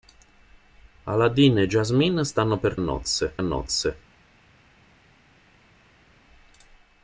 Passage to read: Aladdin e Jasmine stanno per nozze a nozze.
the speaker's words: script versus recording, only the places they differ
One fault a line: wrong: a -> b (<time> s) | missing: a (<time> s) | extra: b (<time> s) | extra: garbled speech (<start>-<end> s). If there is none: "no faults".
no faults